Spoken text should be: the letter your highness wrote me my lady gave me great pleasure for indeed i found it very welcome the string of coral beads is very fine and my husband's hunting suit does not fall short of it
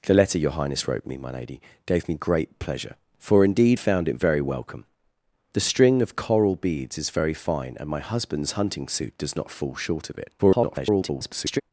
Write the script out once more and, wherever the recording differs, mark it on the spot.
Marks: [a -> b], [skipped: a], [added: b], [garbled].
the letter your highness wrote me my lady gave me great pleasure for indeed [skipped: i] found it very welcome the string of coral beads is very fine and my husband's hunting suit does not fall short of it [garbled]